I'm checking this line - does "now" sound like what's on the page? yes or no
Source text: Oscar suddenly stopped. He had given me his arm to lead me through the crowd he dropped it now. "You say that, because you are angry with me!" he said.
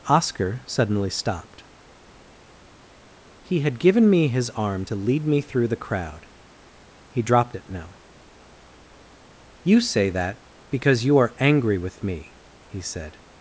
yes